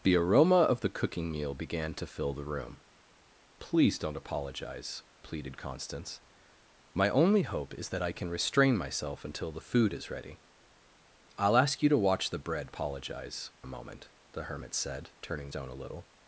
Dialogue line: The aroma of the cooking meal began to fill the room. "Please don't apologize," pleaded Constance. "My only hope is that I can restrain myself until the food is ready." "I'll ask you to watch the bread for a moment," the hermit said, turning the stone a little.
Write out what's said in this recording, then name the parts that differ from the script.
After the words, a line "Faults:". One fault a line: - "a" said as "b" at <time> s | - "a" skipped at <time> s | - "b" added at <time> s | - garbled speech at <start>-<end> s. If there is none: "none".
The aroma of the cooking meal began to fill the room. "Please don't apologize," pleaded Constance. "My only hope is that I can restrain myself until the food is ready." "I'll ask you to watch the bread apologize a moment," the hermit said, turning stone a little.
Faults:
- "for" said as "apologize" at 12.6 s
- "the" skipped at 15.5 s